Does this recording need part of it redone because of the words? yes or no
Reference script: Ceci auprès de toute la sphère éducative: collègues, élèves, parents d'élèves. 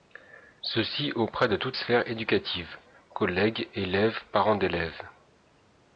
yes